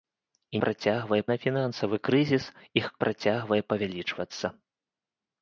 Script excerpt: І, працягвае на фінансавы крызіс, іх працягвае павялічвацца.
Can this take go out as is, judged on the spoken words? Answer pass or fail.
pass